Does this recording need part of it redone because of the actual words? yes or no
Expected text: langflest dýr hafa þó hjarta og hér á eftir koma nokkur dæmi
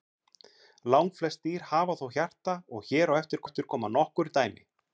yes